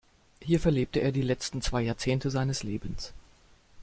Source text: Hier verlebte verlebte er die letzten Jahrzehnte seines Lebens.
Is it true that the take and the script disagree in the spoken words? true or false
true